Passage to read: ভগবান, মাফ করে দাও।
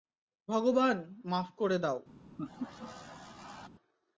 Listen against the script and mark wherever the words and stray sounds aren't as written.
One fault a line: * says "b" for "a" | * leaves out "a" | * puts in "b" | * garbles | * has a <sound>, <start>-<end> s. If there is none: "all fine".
* has a laugh, 2.4-3.7 s